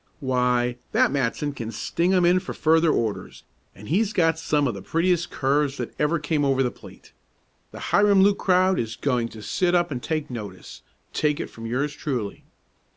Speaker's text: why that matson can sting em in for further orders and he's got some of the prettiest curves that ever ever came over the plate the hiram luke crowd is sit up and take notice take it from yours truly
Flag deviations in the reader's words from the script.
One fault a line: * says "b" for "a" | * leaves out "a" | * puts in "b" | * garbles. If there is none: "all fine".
* leaves out "ever"
* puts in "going to"